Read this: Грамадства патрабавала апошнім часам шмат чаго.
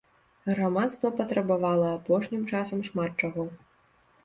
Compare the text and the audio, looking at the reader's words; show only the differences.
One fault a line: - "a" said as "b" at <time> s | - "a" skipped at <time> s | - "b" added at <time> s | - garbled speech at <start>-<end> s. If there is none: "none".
none